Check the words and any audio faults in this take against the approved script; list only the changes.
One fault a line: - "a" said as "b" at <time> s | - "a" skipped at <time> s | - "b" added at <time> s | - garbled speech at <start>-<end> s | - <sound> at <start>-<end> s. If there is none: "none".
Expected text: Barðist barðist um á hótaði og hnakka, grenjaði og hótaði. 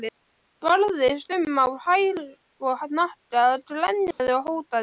- "barðist" skipped at 1.3 s
- "hótaði" said as "hæl" at 1.9 s
- dropout at 4.1-4.2 s